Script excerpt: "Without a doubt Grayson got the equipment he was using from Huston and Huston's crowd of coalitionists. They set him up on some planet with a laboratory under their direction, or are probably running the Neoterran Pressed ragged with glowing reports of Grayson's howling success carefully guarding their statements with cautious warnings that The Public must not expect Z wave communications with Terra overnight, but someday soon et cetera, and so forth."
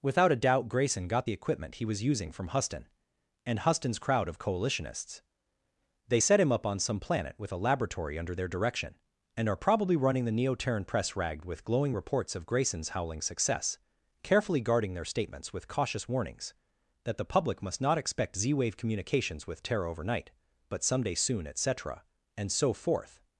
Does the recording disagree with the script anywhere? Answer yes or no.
yes